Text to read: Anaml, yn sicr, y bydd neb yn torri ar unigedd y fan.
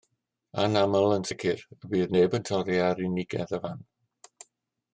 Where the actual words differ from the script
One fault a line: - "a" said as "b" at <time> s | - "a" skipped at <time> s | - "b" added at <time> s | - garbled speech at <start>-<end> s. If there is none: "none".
none